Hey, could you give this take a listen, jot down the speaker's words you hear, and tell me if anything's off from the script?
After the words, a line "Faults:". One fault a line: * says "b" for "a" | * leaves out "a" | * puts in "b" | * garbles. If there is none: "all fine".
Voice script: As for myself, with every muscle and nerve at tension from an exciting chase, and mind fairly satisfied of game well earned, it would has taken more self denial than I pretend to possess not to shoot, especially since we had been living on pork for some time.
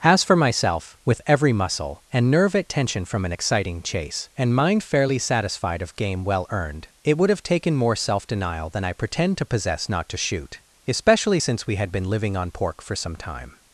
As for myself, with every muscle and nerve at tension from an exciting chase, and mind fairly satisfied of game well earned, it would have taken more self denial than I pretend to possess not to shoot, especially since we had been living on pork for some time.
Faults:
* says "have" for "has"